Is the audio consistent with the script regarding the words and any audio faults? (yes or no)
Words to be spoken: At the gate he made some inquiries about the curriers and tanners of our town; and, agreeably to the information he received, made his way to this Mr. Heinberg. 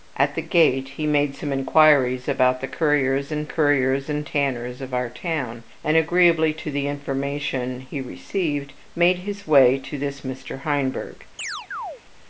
no